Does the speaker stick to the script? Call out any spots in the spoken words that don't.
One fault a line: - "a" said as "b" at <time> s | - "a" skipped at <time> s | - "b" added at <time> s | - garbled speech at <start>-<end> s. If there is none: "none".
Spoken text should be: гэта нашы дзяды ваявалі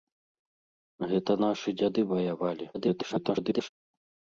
- garbled speech at 2.7-3.7 s